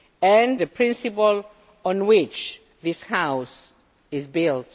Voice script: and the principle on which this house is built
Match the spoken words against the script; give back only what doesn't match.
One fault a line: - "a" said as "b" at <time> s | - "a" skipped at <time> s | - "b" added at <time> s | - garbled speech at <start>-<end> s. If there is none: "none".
none